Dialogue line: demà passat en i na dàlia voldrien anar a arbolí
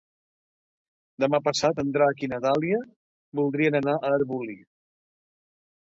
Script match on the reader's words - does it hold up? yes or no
no